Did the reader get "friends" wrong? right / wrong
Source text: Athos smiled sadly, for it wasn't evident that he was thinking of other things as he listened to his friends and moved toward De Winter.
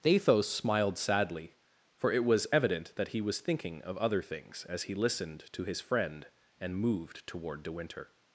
wrong